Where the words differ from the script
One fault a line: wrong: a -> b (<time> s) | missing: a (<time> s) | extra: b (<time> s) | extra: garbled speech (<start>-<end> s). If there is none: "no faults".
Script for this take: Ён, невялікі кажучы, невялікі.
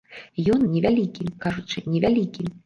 no faults